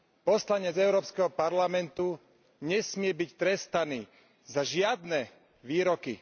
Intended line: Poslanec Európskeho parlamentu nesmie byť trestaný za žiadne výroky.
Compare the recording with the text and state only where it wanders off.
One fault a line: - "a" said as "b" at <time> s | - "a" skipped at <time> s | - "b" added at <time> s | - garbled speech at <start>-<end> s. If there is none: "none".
none